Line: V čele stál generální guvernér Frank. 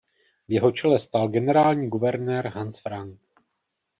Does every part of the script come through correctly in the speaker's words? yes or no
no